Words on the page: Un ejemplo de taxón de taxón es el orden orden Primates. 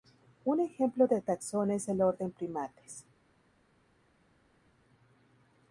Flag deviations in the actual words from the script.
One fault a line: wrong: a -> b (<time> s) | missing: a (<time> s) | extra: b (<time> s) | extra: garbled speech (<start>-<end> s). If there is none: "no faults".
missing: de taxón (1.7 s)
missing: orden (2.3 s)